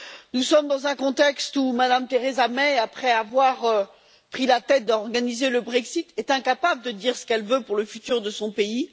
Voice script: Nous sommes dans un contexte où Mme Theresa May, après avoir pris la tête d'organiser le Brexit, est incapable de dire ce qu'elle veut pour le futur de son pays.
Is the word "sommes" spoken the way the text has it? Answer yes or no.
yes